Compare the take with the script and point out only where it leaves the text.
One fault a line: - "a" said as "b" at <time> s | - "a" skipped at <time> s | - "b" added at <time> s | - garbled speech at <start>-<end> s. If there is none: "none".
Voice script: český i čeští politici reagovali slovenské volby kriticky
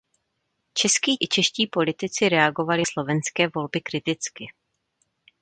none